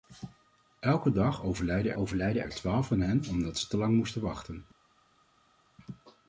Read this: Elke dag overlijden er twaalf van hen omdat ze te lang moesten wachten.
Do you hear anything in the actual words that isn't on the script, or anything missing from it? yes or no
yes